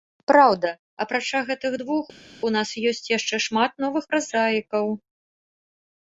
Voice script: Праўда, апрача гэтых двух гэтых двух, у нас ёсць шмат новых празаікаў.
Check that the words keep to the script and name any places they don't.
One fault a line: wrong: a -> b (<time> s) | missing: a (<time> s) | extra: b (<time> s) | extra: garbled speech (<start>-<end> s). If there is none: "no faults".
missing: гэтых двух (2.0 s)
extra: яшчэ (3.2 s)